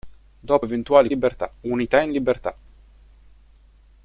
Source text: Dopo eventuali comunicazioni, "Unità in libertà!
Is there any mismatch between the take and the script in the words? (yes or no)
yes